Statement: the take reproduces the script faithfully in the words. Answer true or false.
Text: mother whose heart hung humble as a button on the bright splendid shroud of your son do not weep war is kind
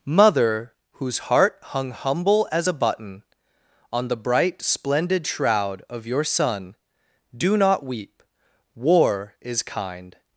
true